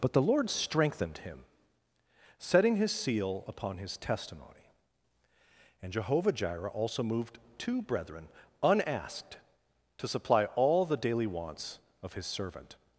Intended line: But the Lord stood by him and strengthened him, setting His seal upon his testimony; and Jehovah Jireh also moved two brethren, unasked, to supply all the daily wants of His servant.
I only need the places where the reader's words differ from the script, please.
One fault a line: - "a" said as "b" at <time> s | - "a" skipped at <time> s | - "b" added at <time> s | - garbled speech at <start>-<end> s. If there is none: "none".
- "stood by him and" skipped at 0.5 s